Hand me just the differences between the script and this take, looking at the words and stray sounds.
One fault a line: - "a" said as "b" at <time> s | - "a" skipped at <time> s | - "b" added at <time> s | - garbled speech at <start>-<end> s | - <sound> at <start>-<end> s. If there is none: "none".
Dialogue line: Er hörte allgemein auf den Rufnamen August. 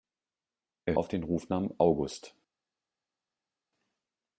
- "hörte allgemein" skipped at 1.0 s